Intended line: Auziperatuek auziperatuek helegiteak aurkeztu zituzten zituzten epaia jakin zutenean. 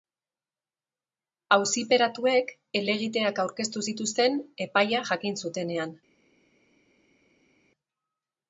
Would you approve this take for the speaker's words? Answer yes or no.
no